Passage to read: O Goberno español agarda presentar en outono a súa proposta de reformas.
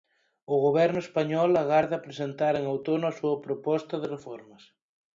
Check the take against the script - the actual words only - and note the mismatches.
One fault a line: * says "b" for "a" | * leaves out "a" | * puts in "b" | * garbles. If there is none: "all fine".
all fine